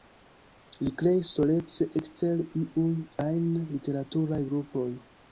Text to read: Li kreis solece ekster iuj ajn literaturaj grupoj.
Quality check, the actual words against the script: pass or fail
pass